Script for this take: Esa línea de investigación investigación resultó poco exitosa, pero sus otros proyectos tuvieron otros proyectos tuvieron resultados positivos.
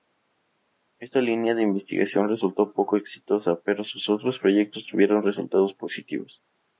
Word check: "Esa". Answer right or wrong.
wrong